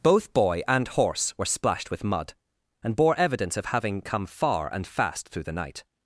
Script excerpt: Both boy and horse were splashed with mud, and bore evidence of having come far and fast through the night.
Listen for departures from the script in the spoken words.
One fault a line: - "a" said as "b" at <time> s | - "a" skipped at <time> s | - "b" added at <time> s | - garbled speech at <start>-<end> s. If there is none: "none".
none